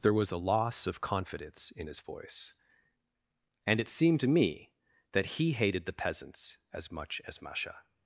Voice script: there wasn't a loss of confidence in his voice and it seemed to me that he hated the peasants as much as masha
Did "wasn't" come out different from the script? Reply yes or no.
yes